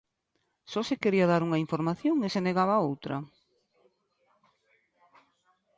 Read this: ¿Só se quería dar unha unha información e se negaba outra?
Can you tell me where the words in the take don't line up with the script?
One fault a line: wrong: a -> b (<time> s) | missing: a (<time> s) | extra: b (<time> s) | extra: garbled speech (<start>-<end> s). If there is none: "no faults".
missing: unha (1.6 s)